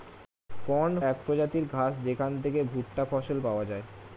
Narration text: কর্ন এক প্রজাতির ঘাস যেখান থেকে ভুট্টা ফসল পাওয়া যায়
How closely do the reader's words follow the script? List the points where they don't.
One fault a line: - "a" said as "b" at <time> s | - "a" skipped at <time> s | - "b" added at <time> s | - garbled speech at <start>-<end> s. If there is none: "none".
none